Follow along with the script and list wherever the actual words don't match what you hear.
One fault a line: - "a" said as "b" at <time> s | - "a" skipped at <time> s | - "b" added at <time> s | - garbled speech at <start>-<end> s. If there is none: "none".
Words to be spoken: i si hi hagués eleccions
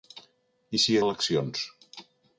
- "hagués" skipped at 1.0 s